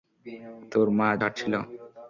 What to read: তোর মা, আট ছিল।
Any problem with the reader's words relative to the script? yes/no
no